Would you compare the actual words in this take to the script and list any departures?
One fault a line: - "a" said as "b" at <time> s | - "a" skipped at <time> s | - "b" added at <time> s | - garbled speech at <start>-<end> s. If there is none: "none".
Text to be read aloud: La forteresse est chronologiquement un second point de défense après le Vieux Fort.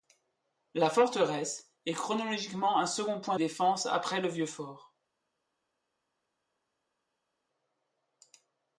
- "de" skipped at 3.4 s